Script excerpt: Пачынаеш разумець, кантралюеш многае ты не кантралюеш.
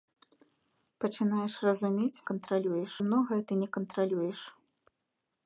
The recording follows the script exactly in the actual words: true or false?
true